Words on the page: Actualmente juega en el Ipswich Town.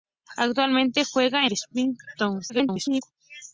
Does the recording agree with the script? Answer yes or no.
no